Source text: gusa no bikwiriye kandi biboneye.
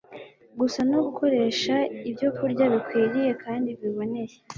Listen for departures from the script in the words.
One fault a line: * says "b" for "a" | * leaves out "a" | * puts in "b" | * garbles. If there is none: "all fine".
* puts in "gukoresha ibyokurya"